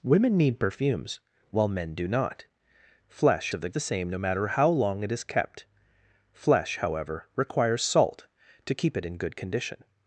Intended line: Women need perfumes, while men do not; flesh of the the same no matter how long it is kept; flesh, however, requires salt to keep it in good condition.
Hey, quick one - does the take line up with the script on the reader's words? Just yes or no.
yes